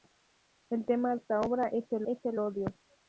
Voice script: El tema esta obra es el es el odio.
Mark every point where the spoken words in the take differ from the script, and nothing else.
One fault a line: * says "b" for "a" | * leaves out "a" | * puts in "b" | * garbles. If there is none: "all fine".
all fine